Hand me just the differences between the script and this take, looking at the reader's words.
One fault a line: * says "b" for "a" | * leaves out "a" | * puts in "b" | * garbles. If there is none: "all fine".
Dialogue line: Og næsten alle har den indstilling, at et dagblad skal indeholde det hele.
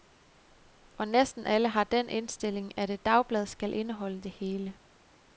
all fine